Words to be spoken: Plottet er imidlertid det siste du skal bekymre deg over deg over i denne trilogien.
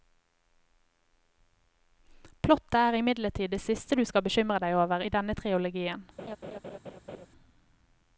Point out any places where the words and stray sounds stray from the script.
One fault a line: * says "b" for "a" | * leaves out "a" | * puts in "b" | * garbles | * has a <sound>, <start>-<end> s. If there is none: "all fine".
* leaves out "deg over"
* has a laugh, 6.2-7.3 s